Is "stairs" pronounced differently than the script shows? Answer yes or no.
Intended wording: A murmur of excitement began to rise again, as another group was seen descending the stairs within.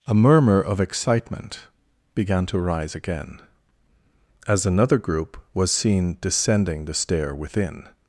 yes